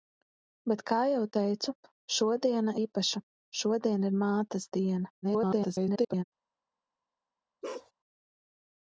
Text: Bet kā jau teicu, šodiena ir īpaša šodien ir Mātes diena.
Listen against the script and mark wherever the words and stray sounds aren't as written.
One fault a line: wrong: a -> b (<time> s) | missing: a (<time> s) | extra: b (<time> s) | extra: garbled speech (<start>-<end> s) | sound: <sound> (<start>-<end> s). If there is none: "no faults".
missing: ir (2.8 s)
extra: garbled speech (5.2-6.2 s)
sound: bark (7.6-7.9 s)